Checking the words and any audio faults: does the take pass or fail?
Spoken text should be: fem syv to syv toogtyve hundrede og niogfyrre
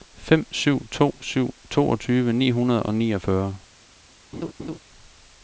fail